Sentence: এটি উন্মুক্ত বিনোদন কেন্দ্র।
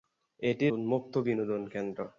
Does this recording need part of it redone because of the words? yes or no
no